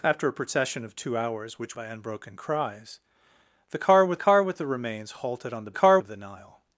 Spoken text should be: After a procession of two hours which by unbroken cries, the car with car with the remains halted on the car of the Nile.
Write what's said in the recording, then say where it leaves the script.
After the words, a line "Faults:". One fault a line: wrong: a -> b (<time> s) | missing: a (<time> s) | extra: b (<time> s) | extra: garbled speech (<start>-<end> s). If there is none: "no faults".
After a procession of two hours which by unbroken cries, the car with car with the remains halted on the car of the Nile.
Faults:
no faults